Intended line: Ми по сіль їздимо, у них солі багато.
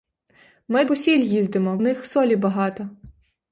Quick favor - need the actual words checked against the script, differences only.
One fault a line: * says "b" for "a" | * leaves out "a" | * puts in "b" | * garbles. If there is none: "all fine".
all fine